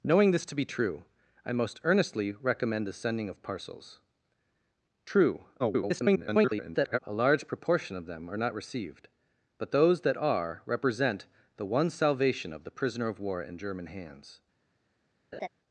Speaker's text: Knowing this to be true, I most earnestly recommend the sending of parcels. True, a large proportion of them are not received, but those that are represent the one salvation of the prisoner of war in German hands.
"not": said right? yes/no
yes